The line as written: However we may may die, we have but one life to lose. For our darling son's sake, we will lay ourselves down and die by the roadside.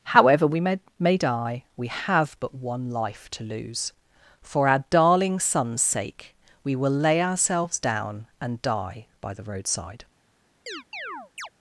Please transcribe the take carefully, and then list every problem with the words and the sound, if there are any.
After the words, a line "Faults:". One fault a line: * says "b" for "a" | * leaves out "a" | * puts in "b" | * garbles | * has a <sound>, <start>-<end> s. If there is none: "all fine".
However we may may die, we have but one life to lose. For our darling son's sake, we will lay ourselves down and die by the roadside.
Faults:
* has a chirp, 10.7-11.5 s